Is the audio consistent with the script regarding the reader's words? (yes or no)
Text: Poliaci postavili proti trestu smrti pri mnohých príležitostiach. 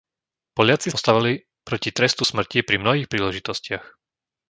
yes